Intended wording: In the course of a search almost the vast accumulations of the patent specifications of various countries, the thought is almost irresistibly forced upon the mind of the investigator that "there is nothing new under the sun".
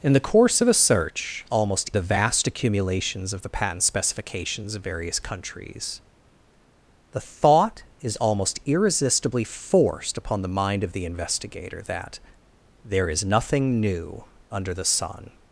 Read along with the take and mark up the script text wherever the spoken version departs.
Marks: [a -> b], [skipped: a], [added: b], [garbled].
In the course of a search almost the vast accumulations of the patent specifications of various countries, the thought is almost irresistibly forced upon the mind of the investigator that "there is nothing new under the sun".